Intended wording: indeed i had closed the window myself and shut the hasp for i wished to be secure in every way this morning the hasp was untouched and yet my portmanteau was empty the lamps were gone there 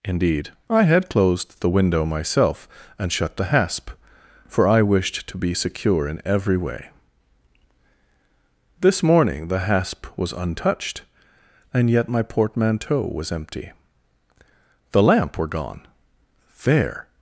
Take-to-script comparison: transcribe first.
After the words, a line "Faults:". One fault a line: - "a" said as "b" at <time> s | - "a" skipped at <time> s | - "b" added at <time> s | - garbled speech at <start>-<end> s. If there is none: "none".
indeed i had closed the window myself and shut the hasp for i wished to be secure in every way this morning the hasp was untouched and yet my portmanteau was empty the lamp were gone there
Faults:
- "lamps" said as "lamp" at 15.0 s